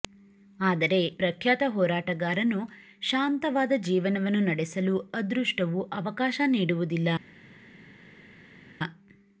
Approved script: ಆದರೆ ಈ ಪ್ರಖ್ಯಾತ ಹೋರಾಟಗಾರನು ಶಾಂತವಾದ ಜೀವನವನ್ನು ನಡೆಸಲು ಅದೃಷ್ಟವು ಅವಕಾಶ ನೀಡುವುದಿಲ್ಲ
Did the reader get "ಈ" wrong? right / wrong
wrong